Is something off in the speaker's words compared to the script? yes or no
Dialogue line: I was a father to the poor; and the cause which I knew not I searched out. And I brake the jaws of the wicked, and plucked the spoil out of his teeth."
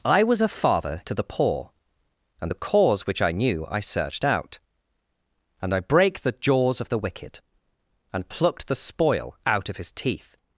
yes